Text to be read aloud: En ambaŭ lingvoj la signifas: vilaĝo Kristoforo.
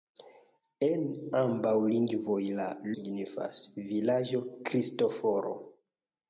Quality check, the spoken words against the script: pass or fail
pass